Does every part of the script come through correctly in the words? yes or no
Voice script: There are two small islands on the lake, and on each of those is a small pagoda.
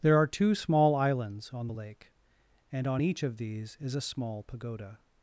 no